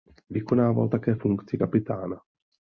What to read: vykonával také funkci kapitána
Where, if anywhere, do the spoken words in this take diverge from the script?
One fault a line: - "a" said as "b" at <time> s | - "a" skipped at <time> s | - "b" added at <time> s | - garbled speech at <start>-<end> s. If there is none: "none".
none